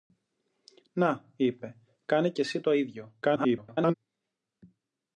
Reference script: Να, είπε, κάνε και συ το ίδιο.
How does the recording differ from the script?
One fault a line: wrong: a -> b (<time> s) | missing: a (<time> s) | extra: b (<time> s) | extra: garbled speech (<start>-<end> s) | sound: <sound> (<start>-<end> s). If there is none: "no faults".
extra: garbled speech (3.2-4.0 s)